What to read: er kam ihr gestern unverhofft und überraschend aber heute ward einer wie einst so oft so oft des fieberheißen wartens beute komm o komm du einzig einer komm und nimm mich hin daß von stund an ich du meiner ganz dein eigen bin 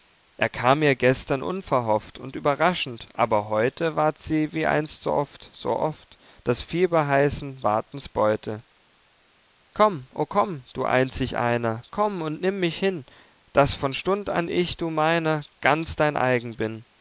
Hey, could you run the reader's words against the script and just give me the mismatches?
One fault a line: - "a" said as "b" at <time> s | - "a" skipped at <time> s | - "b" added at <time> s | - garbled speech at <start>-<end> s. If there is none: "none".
- "einer" said as "sie" at 4.2 s